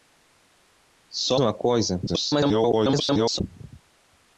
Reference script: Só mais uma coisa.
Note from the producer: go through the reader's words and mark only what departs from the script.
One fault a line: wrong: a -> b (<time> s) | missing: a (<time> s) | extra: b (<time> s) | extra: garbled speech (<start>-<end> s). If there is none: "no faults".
missing: mais (1.4 s)
extra: garbled speech (2.1-3.4 s)